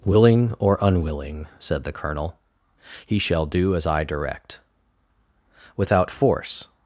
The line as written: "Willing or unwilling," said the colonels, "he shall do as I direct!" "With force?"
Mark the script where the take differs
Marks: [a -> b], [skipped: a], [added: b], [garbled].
"Willing or unwilling," said the [colonels, -> colonel] "he shall do as I direct!" ["With -> Without] force?"